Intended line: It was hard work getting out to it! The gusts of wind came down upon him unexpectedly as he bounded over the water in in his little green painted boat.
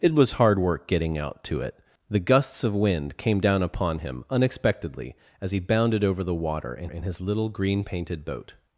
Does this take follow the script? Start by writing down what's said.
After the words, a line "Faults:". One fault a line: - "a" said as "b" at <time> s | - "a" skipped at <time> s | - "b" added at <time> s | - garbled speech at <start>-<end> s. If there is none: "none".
It was hard work getting out to it! The gusts of wind came down upon him unexpectedly as he bounded over the water in in his little green painted boat.
Faults:
none